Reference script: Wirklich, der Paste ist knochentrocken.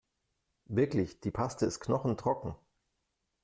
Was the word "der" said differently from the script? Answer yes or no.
yes